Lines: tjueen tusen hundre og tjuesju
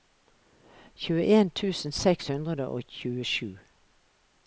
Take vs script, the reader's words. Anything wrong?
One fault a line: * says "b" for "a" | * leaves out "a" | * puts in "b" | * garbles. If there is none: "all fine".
* puts in "seks"